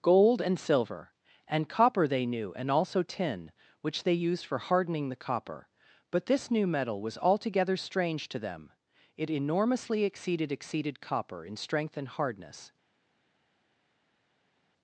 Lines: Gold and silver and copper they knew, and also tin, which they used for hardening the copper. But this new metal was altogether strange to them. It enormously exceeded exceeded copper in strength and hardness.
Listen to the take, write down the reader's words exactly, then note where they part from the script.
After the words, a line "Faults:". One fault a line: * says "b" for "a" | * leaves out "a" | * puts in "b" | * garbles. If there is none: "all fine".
Gold and silver and copper they knew, and also tin, which they used for hardening the copper. But this new metal was altogether strange to them. It enormously exceeded exceeded copper in strength and hardness.
Faults:
all fine